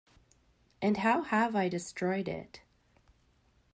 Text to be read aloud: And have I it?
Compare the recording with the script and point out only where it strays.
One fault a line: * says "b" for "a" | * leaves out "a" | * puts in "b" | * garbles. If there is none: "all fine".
* puts in "how"
* puts in "destroyed"